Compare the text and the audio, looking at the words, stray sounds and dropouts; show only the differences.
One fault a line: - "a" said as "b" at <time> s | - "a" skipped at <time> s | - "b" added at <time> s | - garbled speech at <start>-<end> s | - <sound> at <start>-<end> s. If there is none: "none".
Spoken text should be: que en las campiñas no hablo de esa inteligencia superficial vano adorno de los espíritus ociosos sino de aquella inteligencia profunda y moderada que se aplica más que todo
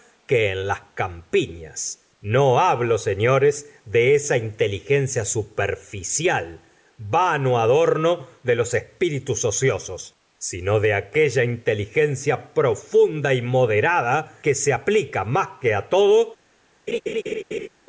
- "señores" added at 3.0 s
- laugh at 16.9-17.7 s